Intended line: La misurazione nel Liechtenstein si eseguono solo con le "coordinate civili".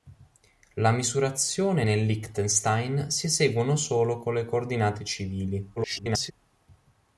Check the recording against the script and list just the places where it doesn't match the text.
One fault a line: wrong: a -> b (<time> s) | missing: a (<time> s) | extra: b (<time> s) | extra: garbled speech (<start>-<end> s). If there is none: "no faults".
extra: garbled speech (5.8-6.3 s)